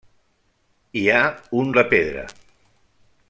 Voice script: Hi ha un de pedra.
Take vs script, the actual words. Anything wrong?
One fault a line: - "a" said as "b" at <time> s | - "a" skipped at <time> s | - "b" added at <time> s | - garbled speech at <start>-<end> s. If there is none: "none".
none